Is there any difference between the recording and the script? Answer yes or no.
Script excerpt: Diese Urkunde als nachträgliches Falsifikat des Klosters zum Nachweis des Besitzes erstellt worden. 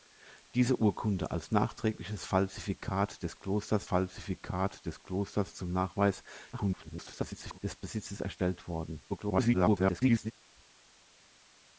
yes